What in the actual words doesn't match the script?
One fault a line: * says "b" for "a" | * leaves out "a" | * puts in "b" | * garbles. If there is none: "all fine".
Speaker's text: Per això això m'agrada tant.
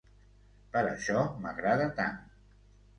* leaves out "això"